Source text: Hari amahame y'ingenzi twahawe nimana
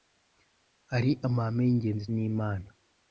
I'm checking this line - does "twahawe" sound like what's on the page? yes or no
no